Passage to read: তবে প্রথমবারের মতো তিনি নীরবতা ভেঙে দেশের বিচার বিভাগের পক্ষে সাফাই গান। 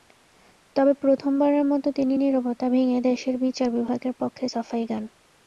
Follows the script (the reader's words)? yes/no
yes